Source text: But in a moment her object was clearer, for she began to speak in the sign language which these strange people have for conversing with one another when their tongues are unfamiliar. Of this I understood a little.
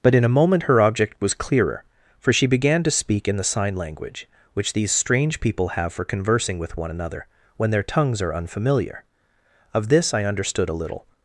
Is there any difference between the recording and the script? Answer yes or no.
no